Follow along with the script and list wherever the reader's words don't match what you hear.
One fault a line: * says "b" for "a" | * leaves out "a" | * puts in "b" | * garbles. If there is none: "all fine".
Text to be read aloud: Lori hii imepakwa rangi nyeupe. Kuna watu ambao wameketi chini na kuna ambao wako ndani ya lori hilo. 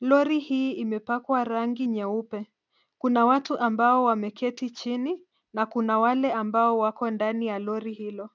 * puts in "wale"